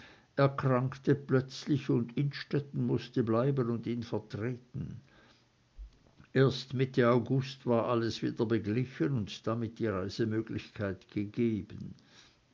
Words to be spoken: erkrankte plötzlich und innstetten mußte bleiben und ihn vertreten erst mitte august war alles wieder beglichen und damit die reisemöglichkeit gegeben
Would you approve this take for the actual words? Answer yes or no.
yes